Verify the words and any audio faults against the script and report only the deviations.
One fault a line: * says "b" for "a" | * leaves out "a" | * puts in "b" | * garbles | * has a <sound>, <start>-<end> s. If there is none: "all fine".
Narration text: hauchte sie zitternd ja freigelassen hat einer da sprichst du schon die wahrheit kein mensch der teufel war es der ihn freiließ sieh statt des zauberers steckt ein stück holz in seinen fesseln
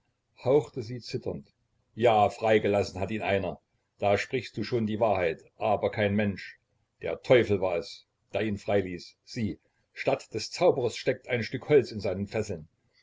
* puts in "ihn"
* puts in "aber"